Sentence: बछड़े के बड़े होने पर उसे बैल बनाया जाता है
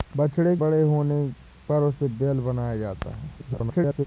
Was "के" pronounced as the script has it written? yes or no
no